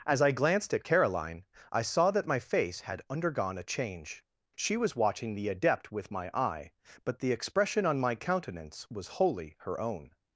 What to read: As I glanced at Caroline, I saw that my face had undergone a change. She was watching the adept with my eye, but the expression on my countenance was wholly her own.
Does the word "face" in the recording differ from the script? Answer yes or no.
no